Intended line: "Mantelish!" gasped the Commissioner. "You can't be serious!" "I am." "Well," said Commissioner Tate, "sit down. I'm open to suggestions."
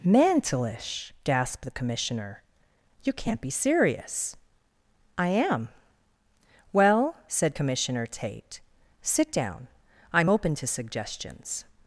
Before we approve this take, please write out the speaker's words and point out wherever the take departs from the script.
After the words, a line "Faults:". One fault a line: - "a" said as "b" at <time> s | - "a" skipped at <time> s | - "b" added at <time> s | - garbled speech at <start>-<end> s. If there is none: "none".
"Mantelish!" gasped the Commissioner. "You can't be serious!" "I am." "Well," said Commissioner Tate, "sit down. I'm open to suggestions."
Faults:
none